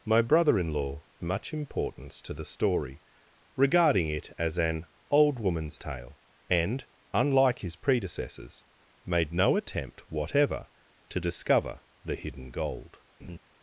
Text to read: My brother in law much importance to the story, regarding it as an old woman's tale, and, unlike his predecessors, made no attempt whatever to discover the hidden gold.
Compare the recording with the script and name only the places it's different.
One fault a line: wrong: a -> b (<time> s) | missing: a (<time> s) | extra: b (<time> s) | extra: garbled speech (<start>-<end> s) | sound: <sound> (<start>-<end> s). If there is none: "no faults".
sound: laugh (13.2-13.4 s)